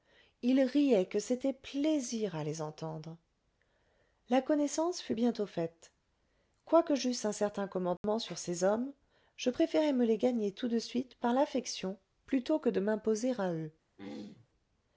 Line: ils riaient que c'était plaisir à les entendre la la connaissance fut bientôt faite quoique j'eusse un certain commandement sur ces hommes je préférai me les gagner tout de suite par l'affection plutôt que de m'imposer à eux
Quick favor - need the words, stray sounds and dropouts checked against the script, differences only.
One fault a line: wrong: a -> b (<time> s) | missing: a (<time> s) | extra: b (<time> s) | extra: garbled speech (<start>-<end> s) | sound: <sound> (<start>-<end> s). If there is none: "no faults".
missing: la (4.4 s)
sound: dropout (8.0-8.0 s)
sound: throat clearing (14.0-14.5 s)